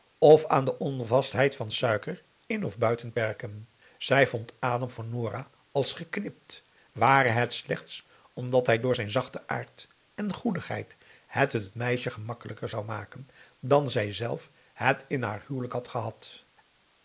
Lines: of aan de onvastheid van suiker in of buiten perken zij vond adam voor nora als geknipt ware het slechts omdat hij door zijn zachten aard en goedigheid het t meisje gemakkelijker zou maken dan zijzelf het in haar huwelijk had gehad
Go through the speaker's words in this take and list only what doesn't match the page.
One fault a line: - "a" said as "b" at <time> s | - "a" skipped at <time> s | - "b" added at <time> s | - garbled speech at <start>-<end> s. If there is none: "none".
none